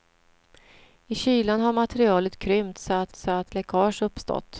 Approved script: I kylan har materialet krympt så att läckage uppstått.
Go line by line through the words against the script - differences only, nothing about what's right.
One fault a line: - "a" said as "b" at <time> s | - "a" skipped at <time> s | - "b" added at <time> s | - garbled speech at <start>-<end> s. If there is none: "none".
- "så att" added at 3.2 s